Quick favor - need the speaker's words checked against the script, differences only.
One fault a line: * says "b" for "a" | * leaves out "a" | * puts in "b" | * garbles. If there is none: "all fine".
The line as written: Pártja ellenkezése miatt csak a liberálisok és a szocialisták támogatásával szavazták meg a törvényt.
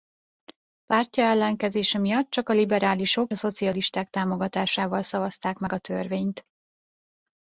* leaves out "és"